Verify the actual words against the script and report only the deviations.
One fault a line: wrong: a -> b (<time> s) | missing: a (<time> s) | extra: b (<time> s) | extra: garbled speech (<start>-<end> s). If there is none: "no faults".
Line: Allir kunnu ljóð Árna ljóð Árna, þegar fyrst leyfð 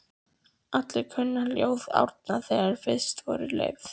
missing: ljóð Árna (2.4 s)
extra: voru (3.3 s)